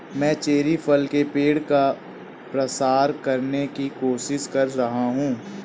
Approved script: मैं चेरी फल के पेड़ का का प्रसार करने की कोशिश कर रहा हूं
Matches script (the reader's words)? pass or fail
fail